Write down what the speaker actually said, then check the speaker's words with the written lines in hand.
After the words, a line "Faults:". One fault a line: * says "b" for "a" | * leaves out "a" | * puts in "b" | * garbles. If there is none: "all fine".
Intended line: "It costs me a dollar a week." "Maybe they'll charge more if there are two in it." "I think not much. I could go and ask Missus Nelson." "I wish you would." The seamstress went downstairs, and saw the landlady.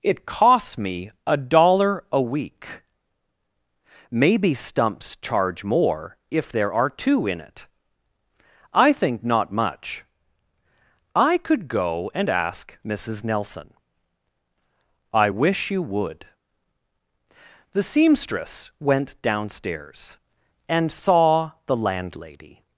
"It costs me a dollar a week." "Maybe stumps charge more if there are two in it." "I think not much. I could go and ask Missus Nelson." "I wish you would." The seamstress went downstairs, and saw the landlady.
Faults:
* says "stumps" for "they'll"